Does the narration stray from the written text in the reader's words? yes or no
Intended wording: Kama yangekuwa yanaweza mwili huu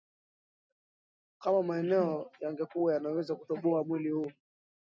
yes